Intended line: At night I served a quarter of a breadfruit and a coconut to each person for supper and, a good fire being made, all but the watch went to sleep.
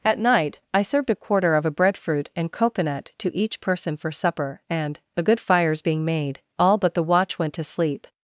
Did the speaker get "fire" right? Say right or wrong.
wrong